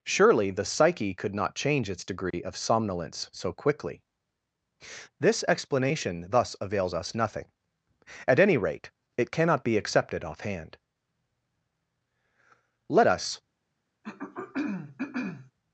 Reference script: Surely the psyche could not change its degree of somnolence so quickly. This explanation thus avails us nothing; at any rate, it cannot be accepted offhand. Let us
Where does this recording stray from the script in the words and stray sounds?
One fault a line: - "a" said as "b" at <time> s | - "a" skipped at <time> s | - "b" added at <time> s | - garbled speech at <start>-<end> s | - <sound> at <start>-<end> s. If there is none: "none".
- dropout at 2.3-2.3 s
- throat clearing at 14.0-15.5 s